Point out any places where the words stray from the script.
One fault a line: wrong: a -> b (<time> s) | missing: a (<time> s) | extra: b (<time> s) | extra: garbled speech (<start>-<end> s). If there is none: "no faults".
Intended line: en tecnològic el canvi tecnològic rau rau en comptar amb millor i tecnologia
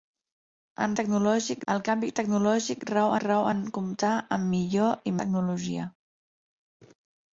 no faults